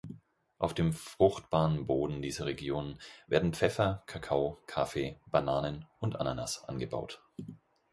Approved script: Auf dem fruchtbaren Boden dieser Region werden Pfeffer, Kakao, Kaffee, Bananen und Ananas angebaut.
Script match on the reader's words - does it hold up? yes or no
yes